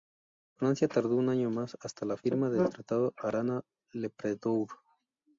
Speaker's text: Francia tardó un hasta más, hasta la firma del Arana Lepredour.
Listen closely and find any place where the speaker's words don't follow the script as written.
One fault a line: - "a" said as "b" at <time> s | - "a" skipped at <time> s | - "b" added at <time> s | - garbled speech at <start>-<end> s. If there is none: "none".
- "hasta" said as "año" at 1.3 s
- "Tratado" added at 2.7 s